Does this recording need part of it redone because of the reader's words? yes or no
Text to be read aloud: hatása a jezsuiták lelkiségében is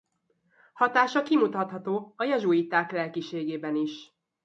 yes